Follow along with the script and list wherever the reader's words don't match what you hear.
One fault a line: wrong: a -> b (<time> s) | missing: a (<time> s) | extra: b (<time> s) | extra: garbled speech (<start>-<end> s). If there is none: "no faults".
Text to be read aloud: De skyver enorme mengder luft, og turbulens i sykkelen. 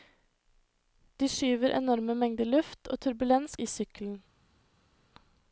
no faults